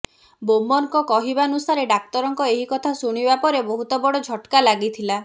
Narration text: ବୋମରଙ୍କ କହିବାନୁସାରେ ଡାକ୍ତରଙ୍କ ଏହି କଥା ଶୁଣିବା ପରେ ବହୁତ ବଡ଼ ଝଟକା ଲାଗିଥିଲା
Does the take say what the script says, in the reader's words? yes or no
yes